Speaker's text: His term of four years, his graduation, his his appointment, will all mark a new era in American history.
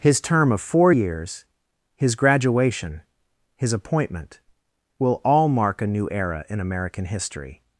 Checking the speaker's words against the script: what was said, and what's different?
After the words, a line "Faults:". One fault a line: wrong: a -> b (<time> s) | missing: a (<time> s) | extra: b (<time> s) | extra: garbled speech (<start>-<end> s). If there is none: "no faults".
His term of four years, his graduation, his appointment, will all mark a new era in American history.
Faults:
missing: his (3.7 s)